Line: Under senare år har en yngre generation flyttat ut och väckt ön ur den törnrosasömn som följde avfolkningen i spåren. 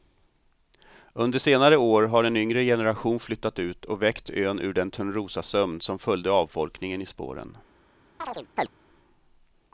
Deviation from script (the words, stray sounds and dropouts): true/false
true